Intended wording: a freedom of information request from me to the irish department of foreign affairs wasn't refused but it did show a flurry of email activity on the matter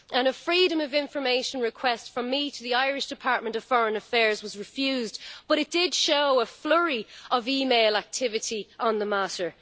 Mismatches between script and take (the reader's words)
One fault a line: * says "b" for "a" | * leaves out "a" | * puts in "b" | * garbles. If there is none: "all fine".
* says "was" for "wasn't"